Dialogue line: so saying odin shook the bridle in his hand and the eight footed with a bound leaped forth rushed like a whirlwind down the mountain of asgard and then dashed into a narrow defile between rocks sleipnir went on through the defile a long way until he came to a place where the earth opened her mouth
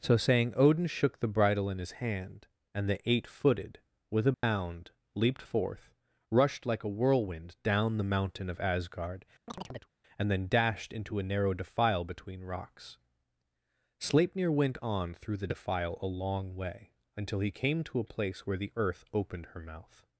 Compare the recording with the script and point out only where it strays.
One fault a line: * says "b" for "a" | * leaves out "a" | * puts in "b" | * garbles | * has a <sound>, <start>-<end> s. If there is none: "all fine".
* has a dropout, 4.3-4.4 s
* has a chirp, 9.5-9.9 s